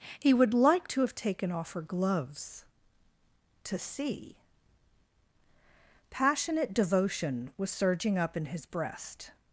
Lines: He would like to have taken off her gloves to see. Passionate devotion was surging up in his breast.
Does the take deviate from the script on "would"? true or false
false